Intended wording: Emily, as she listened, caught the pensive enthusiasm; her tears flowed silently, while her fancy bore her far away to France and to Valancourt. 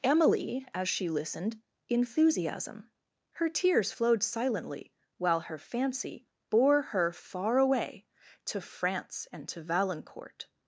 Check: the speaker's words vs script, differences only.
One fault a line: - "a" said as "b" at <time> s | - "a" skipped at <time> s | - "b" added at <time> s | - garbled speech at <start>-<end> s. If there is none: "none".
- "caught the pensive" skipped at 1.6 s